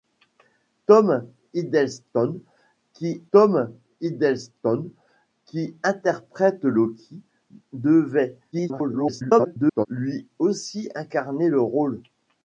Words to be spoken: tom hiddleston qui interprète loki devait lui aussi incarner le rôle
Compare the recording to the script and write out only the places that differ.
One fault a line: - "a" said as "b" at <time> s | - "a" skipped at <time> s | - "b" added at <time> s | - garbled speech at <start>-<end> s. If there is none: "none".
- "tom hiddleston qui" added at 3.3 s
- garbled speech at 8.5-9.9 s